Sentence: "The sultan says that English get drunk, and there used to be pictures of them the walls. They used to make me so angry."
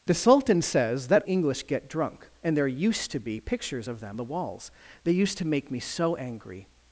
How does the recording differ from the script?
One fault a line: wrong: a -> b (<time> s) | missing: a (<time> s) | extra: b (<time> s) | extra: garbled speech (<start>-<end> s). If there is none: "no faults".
no faults